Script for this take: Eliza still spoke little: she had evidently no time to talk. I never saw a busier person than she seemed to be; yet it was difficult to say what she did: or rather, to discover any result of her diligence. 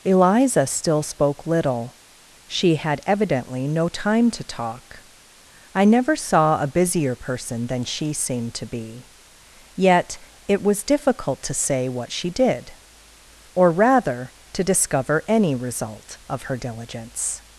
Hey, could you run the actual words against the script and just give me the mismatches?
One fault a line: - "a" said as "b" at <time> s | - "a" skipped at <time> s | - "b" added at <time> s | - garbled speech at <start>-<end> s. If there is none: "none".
none